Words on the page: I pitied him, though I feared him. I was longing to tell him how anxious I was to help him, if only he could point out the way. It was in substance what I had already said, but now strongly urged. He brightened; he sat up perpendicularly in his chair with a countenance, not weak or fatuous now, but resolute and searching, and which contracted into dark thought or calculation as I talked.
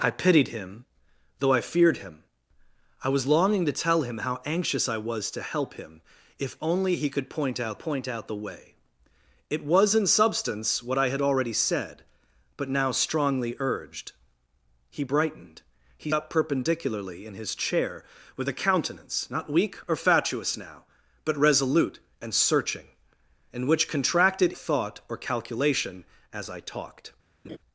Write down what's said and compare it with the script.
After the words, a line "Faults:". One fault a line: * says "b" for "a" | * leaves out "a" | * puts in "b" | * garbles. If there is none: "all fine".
I pitied him, though I feared him. I was longing to tell him how anxious I was to help him, if only he could point out point out the way. It was in substance what I had already said, but now strongly urged. He brightened; he up perpendicularly in his chair with a countenance, not weak or fatuous now, but resolute and searching, and which contracted thought or calculation as I talked.
Faults:
* puts in "point out"
* leaves out "sat"
* leaves out "into dark"